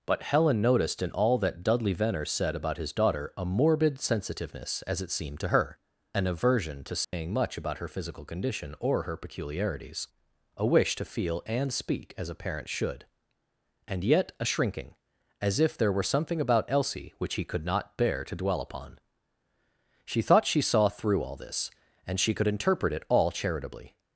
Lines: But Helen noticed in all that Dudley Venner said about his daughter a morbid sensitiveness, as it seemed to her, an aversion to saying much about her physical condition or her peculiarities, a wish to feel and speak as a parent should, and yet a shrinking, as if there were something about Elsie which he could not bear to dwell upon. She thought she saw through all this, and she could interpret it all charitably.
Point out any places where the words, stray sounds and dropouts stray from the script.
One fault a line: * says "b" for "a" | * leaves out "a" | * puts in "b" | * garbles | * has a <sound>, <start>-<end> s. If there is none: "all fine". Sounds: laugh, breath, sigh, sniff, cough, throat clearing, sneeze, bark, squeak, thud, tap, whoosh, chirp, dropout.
* has a dropout, 7.0-7.1 s